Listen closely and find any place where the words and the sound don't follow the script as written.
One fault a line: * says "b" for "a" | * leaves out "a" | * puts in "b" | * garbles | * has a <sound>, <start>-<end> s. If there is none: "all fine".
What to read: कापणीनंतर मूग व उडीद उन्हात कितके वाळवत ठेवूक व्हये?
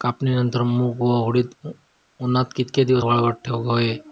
* puts in "दिवस"